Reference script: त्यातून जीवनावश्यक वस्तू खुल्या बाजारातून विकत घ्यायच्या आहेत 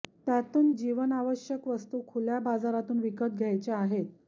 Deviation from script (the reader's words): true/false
false